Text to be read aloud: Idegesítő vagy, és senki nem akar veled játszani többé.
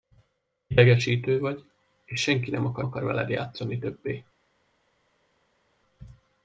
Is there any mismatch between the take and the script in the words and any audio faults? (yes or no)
yes